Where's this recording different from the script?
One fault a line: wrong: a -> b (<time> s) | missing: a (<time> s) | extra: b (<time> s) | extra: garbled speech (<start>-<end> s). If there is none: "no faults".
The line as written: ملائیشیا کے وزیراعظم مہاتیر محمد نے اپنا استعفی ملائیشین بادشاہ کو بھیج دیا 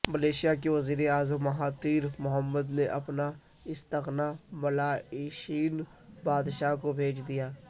no faults